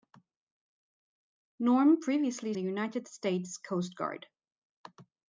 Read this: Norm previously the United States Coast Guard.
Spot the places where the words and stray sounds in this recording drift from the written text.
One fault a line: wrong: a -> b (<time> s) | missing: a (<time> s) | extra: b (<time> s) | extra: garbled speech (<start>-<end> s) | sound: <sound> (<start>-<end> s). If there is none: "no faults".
no faults